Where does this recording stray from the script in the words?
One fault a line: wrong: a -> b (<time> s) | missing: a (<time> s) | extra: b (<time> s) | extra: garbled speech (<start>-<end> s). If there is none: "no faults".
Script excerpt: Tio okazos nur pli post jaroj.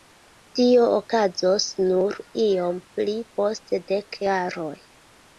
extra: iom (2.5 s)
extra: dek (3.9 s)